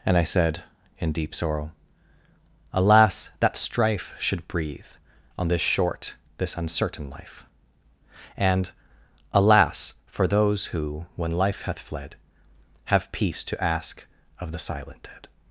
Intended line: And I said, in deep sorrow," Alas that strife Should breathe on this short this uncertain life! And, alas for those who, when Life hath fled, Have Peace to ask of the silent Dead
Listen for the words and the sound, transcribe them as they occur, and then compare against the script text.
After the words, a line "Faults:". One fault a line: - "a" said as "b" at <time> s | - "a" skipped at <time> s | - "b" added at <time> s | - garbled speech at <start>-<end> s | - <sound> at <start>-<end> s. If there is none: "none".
And I said, in deep sorrow," Alas that strife Should breathe on this short this uncertain life! And, alas for those who, when Life hath fled, Have Peace to ask of the silent Dead
Faults:
none